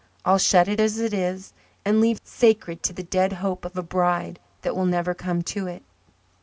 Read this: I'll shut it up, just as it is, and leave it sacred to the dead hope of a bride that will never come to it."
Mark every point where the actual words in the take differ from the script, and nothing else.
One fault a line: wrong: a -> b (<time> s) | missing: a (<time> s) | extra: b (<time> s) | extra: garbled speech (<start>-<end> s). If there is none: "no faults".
missing: up just (0.8 s)
missing: it (2.2 s)